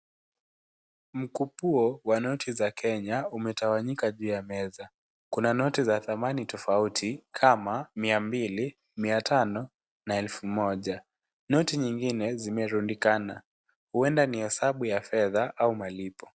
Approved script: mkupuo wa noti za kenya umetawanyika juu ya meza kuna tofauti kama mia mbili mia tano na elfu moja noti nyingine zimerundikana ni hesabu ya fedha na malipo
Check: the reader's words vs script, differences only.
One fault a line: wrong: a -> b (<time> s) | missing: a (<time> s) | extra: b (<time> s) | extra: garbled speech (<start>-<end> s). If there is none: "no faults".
extra: noti za thamani (5.5 s)
extra: huenda (13.9 s)
wrong: na -> au (15.6 s)